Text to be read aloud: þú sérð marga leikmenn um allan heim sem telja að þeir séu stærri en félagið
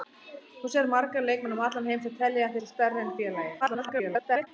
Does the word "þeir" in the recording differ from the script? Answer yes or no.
yes